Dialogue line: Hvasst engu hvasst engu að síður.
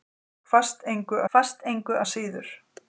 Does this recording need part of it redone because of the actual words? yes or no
no